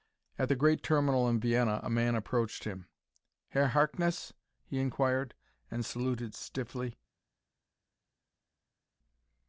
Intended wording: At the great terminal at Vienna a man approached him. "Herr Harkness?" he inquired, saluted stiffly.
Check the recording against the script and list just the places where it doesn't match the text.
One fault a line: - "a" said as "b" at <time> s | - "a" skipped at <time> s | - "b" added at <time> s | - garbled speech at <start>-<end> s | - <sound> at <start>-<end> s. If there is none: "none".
- "at" said as "in" at 1.3 s
- "and" added at 5.7 s